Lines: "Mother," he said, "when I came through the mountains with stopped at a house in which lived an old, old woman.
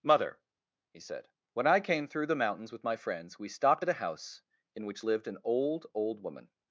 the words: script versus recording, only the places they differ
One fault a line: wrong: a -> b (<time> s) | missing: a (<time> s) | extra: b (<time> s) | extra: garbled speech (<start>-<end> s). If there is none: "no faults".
extra: my friends we (2.8 s)